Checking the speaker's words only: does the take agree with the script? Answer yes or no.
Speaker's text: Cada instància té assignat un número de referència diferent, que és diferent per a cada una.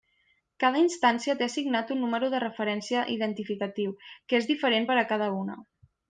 no